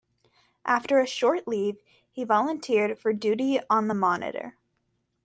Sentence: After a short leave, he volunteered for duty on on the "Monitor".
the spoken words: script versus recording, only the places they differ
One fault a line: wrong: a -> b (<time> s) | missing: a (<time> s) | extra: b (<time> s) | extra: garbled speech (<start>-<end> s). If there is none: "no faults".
missing: on (3.9 s)